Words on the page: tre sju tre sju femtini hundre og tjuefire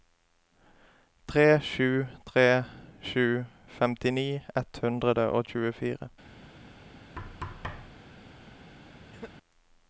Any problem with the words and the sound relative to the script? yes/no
yes